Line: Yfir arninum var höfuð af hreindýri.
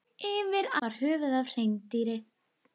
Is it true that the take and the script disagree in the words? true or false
true